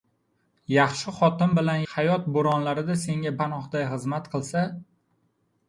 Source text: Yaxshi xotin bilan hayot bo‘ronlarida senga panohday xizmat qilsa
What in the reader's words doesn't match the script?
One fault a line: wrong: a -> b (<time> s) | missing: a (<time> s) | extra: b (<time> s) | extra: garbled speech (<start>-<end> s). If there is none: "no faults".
no faults